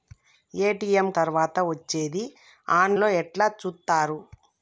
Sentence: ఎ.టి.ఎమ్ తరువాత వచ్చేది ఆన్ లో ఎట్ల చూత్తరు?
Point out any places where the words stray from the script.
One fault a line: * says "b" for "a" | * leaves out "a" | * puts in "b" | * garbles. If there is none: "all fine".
all fine